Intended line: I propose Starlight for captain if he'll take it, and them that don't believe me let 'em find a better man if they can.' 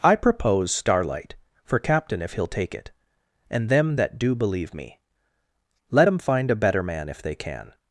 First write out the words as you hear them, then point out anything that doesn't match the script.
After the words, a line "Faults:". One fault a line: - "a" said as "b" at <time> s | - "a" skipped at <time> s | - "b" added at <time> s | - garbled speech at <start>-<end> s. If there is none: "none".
I propose Starlight for captain if he'll take it, and them that do believe me let 'em find a better man if they can.'
Faults:
- "don't" said as "do" at 4.2 s